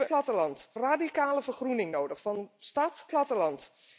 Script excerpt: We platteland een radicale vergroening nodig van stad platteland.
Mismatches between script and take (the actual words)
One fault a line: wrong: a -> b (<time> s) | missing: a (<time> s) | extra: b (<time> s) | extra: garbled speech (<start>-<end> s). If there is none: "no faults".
no faults